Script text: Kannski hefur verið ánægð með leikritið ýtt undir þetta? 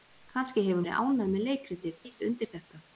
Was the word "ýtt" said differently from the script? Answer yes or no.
no